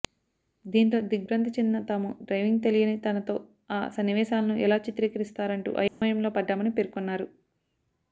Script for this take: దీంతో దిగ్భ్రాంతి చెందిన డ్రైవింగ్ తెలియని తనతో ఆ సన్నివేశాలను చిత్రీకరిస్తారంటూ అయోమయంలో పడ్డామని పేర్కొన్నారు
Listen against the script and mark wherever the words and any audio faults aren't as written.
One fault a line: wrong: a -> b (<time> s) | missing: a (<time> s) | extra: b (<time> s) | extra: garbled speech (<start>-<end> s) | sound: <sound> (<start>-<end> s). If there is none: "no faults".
extra: తాము (1.9 s)
extra: ఎలా (4.6 s)
sound: dropout (5.9-6.0 s)